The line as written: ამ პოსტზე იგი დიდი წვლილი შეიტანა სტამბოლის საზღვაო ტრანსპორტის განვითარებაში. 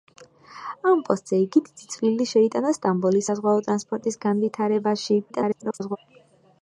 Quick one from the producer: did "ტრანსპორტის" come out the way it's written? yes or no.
yes